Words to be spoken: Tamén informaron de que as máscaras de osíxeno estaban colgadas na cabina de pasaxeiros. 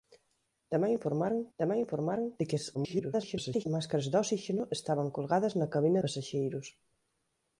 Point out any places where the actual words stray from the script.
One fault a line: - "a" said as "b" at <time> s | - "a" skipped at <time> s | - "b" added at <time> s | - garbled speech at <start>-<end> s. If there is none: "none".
- "tamén informaron" added at 1.6 s
- garbled speech at 2.7-3.7 s
- "de" skipped at 6.0 s